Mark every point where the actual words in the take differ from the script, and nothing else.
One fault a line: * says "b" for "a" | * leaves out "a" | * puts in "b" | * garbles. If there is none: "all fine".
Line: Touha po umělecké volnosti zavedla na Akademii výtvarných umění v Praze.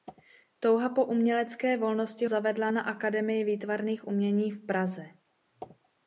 all fine